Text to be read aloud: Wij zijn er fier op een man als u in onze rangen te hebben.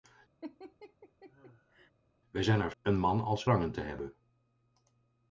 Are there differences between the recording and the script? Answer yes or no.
yes